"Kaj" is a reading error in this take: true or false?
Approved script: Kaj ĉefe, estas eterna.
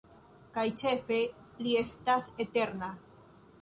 false